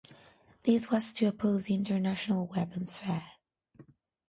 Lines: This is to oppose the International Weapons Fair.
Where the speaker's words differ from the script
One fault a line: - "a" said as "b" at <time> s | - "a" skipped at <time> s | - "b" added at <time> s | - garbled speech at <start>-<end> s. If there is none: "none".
- "is" said as "was" at 0.9 s